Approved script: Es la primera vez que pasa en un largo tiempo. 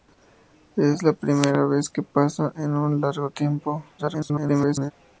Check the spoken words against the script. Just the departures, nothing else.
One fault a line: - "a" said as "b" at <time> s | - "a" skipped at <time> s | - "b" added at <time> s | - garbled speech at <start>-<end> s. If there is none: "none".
- garbled speech at 4.0-4.9 s